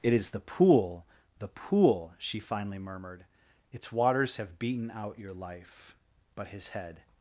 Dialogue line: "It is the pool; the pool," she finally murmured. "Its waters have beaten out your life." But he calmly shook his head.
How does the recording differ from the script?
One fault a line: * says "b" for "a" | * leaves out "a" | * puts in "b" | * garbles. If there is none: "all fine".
* leaves out "he calmly shook"